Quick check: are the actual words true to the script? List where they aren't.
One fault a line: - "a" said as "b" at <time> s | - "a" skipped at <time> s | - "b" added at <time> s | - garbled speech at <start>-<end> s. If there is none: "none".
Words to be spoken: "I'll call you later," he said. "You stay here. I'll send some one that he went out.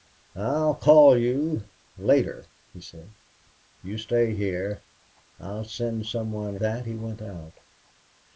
none